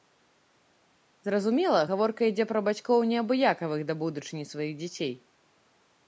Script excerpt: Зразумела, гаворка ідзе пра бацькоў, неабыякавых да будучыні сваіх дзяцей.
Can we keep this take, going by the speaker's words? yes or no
yes